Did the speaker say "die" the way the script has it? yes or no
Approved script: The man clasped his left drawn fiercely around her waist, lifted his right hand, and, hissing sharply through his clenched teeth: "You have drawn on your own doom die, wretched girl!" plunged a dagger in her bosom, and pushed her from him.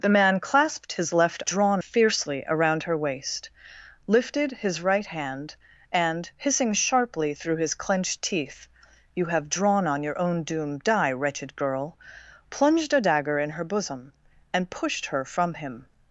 yes